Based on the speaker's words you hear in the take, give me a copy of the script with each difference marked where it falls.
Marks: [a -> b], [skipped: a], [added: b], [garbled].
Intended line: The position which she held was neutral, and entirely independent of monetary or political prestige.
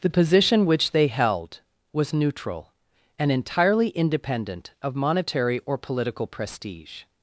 The position which [she -> they] held was neutral, and entirely independent of monetary or political prestige.